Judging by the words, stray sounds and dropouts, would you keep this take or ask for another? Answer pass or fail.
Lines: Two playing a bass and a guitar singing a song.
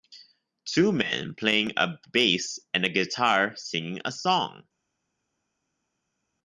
fail